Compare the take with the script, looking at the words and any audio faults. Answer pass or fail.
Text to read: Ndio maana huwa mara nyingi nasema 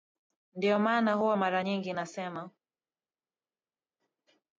pass